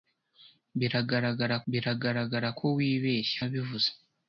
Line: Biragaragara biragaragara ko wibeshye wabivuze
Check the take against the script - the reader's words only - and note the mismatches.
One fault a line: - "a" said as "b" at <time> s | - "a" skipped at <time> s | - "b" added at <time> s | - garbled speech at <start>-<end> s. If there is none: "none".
none